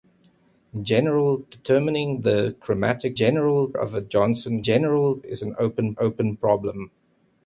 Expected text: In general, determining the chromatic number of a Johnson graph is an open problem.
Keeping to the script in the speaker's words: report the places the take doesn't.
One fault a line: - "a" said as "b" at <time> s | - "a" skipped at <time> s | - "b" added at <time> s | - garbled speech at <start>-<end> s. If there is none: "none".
- "number" said as "general" at 3.1 s
- "graph" said as "general" at 4.6 s
- "open" added at 6.0 s